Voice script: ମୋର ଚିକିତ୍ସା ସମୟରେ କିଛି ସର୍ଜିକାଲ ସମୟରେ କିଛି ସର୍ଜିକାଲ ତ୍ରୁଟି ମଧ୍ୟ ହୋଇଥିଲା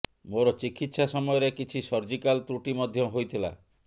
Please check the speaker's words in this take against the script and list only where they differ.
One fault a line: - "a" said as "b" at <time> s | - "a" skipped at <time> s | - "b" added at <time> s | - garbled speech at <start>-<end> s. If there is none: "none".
- "ସମୟରେ କିଛି ସର୍ଜିକାଲ" skipped at 2.4 s